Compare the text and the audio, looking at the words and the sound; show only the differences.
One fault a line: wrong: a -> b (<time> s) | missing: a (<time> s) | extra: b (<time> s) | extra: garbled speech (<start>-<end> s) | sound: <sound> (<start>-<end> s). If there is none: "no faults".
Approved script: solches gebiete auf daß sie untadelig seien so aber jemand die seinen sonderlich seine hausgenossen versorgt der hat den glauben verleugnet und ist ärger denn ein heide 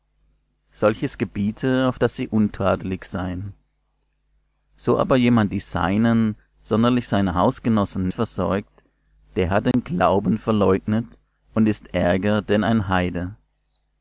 sound: dropout (9.7-9.7 s)